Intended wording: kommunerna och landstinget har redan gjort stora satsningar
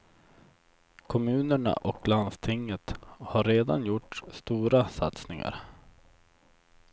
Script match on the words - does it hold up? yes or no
yes